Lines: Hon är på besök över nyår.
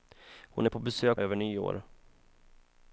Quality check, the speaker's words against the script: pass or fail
pass